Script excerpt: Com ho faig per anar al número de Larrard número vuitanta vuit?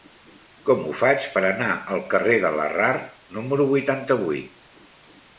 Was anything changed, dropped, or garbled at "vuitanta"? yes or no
no